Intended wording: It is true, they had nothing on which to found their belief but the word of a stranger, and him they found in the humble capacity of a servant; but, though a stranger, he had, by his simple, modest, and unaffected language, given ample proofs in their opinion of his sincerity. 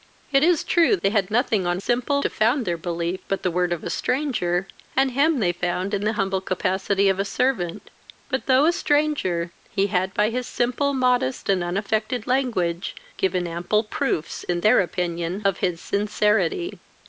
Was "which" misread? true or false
true